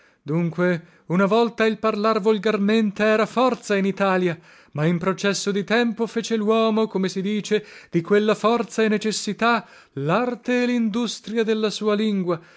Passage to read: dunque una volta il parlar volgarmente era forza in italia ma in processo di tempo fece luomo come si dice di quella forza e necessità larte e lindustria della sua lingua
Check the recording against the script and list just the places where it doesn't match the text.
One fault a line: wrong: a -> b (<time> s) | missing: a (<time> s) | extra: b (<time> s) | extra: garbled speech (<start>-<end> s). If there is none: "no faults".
no faults